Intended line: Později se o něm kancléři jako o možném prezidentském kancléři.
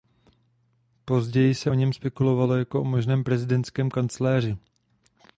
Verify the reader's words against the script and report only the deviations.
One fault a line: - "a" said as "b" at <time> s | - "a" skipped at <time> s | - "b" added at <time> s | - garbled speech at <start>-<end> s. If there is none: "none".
- "kancléři" said as "spekulovalo" at 1.9 s